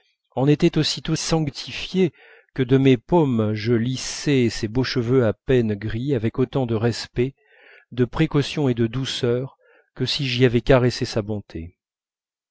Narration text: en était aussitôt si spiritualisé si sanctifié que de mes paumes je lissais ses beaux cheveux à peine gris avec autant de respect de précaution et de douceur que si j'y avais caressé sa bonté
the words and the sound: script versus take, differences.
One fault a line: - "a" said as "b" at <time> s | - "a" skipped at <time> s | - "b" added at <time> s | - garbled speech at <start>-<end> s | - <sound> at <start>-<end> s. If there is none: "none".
- "si spiritualisé si" skipped at 1.1 s